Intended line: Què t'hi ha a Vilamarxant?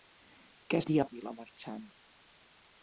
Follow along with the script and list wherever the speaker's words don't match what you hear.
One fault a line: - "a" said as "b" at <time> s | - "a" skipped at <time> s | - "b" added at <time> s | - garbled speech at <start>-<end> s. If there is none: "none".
none